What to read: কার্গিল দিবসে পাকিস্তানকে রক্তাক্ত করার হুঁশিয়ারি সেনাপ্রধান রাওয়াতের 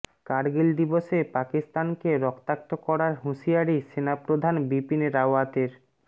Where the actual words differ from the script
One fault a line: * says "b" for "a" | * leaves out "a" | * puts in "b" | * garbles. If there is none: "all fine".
* puts in "বিপিন"